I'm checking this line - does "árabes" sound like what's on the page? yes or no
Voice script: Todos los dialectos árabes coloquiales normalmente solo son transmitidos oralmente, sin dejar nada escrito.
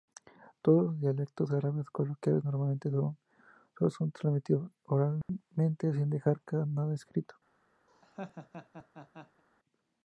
yes